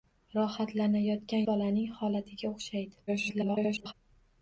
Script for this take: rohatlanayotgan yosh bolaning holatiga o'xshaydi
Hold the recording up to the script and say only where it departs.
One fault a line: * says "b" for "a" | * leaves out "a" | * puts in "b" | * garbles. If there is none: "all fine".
* leaves out "yosh"
* garbles